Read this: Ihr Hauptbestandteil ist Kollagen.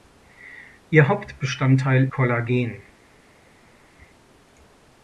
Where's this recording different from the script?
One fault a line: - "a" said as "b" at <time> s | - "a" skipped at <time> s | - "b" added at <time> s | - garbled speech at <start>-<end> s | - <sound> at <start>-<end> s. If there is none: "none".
- "ist" skipped at 2.1 s